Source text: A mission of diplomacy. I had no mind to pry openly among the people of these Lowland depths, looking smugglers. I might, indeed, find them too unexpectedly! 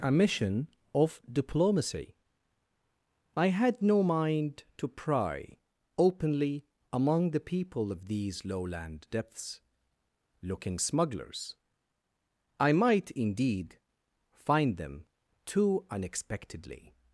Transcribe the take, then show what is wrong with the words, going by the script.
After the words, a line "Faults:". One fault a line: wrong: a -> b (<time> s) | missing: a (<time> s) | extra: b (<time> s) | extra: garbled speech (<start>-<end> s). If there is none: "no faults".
A mission of diplomacy. I had no mind to pry openly among the people of these Lowland depths, looking smugglers. I might, indeed, find them too unexpectedly!
Faults:
no faults